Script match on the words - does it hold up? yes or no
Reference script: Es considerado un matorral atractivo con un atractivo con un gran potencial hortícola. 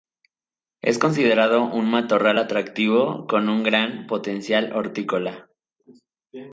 no